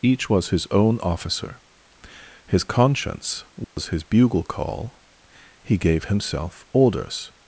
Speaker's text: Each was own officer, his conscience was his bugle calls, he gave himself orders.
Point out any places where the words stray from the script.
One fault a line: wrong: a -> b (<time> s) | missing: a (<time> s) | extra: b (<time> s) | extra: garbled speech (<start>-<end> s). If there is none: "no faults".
extra: his (0.5 s)
wrong: calls -> call (4.4 s)